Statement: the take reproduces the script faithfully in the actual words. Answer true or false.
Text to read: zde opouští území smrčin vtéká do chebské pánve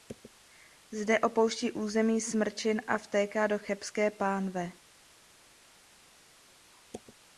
false